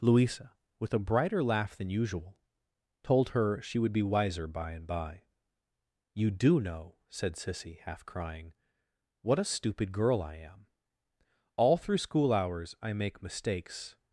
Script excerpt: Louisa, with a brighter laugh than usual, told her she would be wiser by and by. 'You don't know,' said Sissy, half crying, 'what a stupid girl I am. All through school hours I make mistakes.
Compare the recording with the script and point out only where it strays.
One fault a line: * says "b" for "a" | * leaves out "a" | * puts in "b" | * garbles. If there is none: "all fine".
* says "do" for "don't"